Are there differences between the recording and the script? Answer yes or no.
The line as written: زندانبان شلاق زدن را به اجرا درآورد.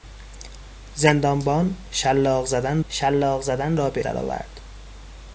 yes